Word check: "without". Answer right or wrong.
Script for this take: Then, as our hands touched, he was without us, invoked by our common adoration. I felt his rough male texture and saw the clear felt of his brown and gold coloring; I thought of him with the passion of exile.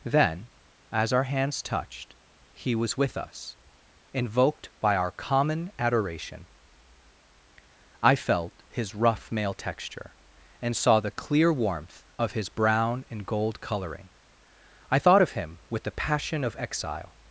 wrong